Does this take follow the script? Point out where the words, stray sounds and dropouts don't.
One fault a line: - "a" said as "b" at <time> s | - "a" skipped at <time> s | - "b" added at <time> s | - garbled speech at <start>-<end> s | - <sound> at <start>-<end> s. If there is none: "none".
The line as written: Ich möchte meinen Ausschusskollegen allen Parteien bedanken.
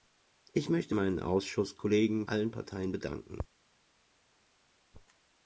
none